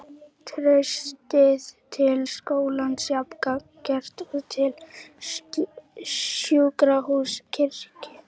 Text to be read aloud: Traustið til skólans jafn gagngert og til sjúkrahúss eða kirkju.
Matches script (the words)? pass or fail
fail